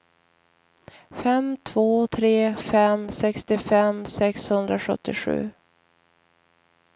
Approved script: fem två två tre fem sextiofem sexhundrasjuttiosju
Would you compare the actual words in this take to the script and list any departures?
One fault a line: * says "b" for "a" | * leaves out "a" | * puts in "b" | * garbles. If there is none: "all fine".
* leaves out "två"